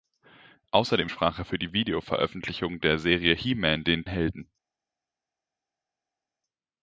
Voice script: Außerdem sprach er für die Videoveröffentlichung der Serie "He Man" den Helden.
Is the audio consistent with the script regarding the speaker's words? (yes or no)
yes